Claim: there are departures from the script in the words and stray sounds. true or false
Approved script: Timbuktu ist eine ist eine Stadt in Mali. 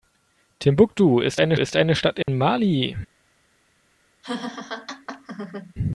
true